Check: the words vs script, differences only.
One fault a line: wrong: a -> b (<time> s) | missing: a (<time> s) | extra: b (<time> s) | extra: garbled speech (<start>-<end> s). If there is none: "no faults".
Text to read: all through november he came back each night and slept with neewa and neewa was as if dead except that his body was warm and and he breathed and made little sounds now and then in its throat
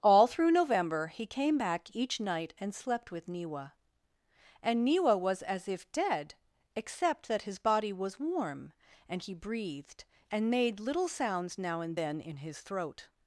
missing: and (9.2 s)
wrong: its -> his (12.4 s)